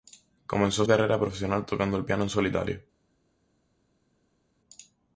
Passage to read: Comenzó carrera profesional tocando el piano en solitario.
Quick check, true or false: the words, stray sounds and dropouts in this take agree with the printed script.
true